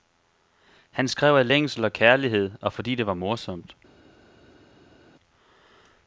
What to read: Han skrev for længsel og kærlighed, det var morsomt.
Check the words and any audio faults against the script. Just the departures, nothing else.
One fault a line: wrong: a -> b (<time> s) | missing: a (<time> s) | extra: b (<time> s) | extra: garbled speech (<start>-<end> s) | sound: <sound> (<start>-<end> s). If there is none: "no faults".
wrong: for -> af (1.4 s)
extra: og fordi (2.6 s)